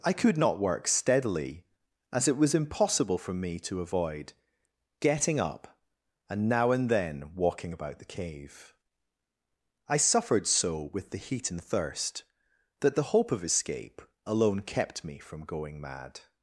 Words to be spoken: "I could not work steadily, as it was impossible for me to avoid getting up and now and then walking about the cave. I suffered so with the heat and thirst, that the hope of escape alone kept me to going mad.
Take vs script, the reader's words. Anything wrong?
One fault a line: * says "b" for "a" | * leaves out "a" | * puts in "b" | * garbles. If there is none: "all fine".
* says "from" for "to"